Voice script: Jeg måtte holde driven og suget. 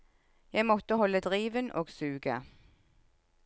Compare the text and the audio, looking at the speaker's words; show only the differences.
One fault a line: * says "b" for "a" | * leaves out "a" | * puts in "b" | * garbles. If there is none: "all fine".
all fine